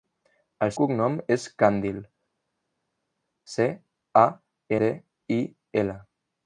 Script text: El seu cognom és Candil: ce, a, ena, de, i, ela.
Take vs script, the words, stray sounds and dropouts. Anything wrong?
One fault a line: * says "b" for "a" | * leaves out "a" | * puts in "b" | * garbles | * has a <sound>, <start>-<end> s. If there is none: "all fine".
* leaves out "seu"
* leaves out "ena"